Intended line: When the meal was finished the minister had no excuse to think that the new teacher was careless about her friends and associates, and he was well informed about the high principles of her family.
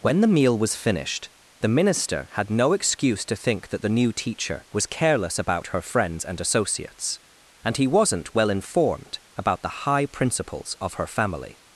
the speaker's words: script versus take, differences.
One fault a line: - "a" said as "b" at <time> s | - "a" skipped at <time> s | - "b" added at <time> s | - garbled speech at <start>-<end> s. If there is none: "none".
- "was" said as "wasn't" at 7.8 s